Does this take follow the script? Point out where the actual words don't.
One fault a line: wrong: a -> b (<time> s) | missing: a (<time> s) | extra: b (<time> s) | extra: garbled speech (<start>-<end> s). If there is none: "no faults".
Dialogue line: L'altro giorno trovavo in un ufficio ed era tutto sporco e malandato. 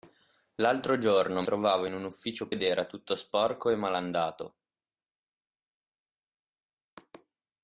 no faults